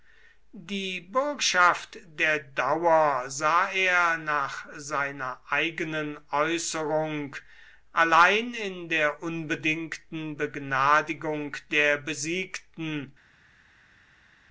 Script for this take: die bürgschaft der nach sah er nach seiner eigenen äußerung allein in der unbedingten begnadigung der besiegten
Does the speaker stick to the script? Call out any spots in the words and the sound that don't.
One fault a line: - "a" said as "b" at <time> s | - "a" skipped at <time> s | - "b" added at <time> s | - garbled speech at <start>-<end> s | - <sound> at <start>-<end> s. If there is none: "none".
- "nach" said as "dauer" at 2.4 s